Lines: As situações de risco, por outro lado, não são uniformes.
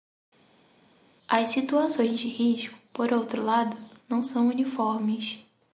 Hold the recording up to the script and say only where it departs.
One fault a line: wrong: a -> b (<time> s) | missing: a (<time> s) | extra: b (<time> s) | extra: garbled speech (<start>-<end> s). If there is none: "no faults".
no faults